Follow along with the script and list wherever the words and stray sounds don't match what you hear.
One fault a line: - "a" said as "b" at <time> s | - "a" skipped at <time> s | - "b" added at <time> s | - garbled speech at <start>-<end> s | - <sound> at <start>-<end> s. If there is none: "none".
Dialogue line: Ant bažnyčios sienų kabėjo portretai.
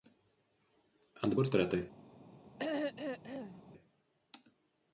- "bažnyčios sienų kabėjo" skipped at 1.4 s
- throat clearing at 2.6-3.6 s